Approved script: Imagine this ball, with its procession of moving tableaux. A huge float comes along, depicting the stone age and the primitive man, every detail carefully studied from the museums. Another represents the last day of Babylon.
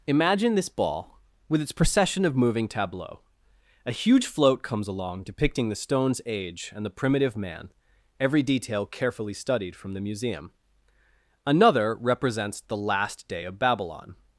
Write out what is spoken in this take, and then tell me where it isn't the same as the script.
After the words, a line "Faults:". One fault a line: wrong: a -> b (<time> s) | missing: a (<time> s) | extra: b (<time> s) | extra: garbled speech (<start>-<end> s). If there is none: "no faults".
Imagine this ball, with its procession of moving tableaux. A huge float comes along, depicting the stones age and the primitive man, every detail carefully studied from the museum. Another represents the last day of Babylon.
Faults:
wrong: stone -> stones (5.8 s)
wrong: museums -> museum (10.0 s)